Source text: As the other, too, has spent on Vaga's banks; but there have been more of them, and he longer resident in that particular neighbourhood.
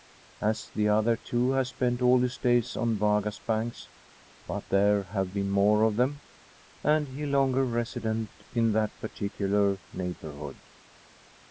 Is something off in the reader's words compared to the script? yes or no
yes